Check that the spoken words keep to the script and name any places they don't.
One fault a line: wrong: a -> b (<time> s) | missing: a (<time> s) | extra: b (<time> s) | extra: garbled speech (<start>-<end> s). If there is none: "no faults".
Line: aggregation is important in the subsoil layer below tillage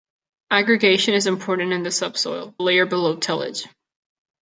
no faults